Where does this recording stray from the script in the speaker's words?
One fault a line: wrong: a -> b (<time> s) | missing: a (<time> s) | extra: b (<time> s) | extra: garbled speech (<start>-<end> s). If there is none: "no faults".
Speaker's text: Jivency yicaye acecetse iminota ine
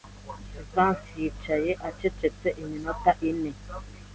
no faults